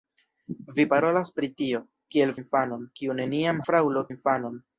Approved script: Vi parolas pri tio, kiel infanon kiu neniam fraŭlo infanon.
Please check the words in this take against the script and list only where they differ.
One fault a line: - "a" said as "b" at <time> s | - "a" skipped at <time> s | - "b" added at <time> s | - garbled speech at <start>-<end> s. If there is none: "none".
none